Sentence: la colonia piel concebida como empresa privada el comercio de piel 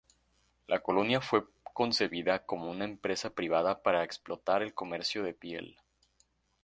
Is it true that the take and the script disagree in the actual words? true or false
true